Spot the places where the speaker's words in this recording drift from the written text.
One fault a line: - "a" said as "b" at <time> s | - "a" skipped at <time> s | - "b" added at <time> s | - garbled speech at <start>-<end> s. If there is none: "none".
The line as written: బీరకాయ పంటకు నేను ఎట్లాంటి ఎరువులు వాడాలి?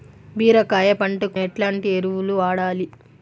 - "నేను" skipped at 1.4 s